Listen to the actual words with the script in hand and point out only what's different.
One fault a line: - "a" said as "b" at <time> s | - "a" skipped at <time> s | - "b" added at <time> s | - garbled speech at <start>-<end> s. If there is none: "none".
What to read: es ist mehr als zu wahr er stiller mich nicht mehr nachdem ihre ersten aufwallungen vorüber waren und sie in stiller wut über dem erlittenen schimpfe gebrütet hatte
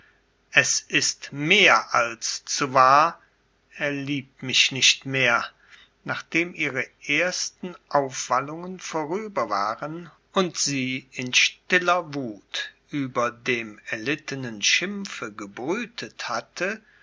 - "stiller" said as "liebt" at 3.9 s